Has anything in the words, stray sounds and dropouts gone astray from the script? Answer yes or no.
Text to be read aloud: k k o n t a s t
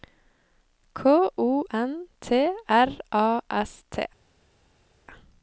yes